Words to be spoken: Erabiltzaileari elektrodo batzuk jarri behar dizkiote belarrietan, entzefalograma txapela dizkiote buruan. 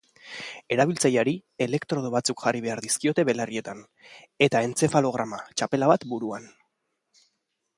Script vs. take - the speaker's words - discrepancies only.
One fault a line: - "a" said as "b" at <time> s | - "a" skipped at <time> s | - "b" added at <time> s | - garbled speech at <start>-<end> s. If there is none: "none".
- "eta" added at 4.5 s
- "dizkiote" said as "bat" at 5.9 s